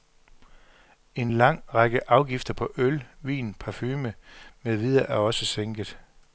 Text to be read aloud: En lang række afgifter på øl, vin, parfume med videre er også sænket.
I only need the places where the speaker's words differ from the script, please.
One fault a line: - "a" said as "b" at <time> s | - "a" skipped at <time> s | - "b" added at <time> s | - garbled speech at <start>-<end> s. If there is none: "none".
none